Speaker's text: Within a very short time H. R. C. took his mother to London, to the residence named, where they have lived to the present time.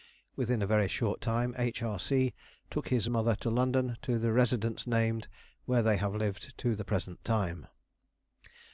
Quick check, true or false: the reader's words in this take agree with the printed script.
true